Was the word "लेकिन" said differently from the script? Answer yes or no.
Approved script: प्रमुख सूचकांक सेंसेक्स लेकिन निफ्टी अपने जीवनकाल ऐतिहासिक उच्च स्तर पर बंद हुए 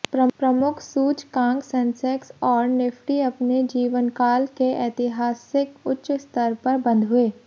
yes